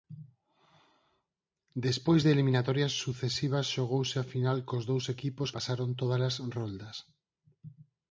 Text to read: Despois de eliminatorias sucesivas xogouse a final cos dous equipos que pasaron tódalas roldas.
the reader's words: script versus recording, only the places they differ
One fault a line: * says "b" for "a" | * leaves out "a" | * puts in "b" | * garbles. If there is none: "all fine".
* leaves out "que"